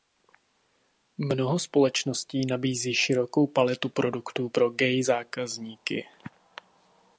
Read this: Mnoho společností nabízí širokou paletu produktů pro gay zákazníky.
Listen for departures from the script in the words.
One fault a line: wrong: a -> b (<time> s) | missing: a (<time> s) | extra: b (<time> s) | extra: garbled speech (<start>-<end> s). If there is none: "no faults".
no faults